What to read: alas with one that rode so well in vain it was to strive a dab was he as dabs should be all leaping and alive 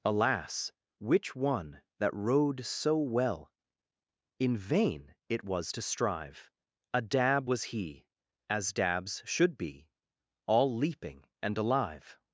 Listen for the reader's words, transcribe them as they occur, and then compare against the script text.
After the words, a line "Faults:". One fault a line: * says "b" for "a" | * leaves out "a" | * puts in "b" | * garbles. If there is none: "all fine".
alas which one that rode so well in vain it was to strive a dab was he as dabs should be all leaping and alive
Faults:
* says "which" for "with"